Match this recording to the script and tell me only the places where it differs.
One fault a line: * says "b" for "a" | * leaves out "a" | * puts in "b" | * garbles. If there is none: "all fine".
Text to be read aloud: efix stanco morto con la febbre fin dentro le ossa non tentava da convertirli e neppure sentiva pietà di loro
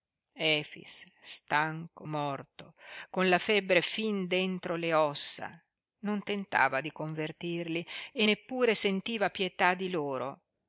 * says "di" for "da"